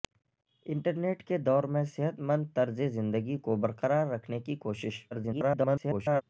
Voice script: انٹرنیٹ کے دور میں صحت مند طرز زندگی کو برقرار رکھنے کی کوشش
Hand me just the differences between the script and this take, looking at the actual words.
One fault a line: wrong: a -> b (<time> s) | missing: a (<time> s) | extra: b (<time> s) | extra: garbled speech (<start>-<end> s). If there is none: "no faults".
extra: garbled speech (5.1-6.2 s)